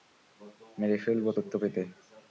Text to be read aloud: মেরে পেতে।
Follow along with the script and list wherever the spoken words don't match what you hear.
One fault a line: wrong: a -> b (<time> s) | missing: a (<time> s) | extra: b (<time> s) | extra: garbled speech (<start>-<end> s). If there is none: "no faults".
extra: ফেলবো তথ্য (1.0 s)